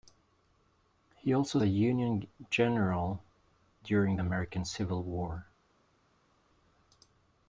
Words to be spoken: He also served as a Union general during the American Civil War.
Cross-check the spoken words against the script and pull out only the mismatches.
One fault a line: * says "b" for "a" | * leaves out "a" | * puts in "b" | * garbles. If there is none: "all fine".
* leaves out "served as"
* leaves out "the"